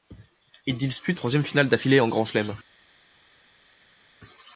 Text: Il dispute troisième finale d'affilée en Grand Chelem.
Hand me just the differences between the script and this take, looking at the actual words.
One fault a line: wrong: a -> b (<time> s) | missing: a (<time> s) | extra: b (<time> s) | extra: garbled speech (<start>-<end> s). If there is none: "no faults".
no faults